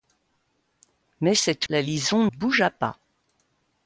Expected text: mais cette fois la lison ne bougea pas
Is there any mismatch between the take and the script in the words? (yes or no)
yes